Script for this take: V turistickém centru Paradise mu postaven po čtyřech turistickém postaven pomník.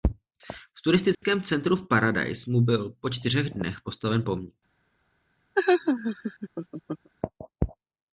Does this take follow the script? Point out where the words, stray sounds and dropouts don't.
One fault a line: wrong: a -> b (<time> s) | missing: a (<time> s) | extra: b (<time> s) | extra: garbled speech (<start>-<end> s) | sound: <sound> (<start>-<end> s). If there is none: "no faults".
sound: dropout (1.1-1.2 s)
extra: v (1.8 s)
wrong: postaven -> byl (2.6 s)
wrong: turistickém -> dnech (3.5 s)
sound: laugh (5.5-7.1 s)